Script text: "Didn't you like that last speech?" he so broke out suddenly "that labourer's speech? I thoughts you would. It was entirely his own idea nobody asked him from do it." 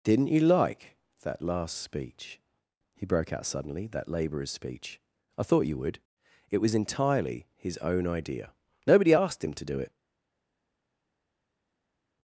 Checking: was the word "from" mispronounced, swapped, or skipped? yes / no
yes